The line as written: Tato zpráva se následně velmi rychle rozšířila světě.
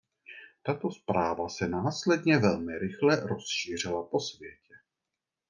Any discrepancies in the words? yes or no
yes